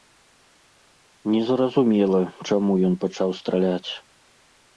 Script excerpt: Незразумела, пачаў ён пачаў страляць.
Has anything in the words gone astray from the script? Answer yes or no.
yes